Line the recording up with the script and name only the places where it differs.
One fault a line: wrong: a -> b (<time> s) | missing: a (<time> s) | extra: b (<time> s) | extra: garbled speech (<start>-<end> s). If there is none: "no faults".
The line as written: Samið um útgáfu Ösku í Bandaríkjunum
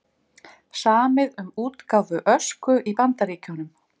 no faults